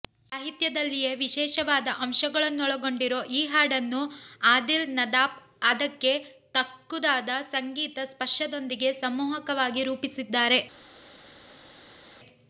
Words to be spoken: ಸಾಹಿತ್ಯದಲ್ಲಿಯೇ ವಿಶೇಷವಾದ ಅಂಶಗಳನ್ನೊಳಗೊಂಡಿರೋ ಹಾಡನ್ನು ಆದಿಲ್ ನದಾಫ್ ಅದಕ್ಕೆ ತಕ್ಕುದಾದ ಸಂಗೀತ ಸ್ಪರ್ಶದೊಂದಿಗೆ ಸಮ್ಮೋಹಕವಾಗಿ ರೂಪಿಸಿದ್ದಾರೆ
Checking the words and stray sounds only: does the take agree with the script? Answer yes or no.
no